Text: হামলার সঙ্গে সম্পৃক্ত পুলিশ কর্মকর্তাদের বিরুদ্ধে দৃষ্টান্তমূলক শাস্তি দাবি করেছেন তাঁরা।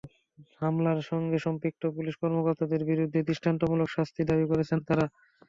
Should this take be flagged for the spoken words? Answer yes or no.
no